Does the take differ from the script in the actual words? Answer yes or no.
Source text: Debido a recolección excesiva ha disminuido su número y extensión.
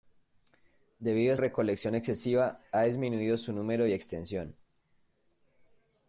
no